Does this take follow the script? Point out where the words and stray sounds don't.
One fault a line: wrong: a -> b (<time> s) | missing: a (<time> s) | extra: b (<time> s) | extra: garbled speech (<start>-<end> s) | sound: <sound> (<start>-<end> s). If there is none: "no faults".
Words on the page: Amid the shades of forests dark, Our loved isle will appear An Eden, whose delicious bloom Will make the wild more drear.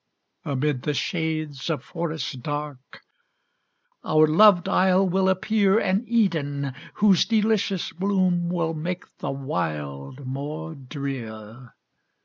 no faults